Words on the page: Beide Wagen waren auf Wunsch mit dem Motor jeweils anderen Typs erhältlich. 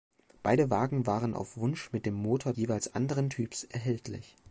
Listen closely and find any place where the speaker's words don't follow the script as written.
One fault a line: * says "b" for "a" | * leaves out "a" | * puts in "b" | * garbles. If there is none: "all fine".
all fine